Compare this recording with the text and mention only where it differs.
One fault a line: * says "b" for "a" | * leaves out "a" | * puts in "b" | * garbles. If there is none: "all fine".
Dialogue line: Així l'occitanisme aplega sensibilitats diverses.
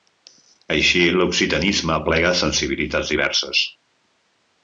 all fine